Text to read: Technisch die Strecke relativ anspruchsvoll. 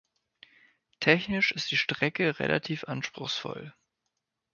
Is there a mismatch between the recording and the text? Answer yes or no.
yes